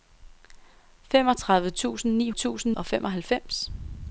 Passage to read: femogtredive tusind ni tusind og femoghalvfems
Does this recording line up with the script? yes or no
yes